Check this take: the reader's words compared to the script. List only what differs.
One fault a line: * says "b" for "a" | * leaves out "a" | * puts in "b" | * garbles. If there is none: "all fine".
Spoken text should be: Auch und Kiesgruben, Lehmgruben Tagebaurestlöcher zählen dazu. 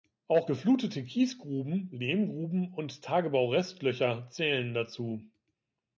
* says "geflutete" for "und"
* puts in "und"